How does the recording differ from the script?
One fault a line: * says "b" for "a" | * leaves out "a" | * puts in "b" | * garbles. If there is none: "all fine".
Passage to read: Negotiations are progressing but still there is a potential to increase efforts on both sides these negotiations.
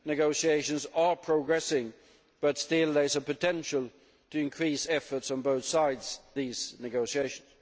all fine